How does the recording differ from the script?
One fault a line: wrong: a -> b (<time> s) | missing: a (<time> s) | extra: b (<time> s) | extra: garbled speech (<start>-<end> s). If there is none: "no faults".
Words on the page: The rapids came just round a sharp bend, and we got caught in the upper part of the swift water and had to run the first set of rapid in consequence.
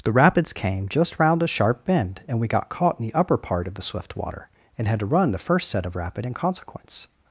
no faults